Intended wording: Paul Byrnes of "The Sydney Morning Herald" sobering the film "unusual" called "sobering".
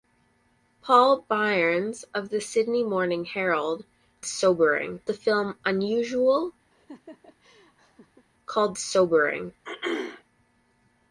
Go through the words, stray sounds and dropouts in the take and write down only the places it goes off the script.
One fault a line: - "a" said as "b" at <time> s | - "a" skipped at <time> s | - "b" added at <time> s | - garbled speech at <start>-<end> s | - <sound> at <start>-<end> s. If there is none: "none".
- laugh at 6.7-8.3 s
- throat clearing at 9.6-10.2 s